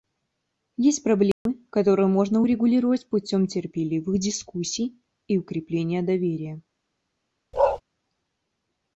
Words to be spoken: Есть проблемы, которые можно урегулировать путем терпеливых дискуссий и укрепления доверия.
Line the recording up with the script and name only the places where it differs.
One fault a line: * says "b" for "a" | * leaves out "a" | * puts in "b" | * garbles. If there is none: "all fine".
all fine